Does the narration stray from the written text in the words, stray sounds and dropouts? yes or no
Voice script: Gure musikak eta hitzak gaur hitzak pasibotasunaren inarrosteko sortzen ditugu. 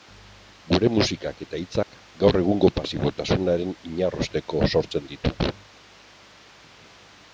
yes